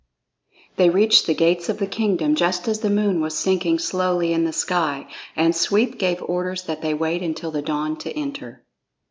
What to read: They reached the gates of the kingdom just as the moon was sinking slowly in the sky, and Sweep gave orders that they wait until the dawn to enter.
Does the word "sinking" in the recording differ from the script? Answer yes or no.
no